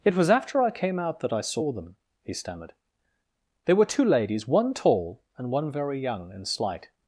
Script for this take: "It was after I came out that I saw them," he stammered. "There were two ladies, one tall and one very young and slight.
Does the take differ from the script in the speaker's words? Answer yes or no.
no